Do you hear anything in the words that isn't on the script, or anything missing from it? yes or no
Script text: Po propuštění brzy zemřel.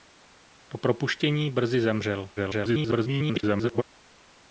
yes